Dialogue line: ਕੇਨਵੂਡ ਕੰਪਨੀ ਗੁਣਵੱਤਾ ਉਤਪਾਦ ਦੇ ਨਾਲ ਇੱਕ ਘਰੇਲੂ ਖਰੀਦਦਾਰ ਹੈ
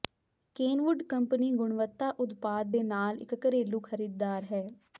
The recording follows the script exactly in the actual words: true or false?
true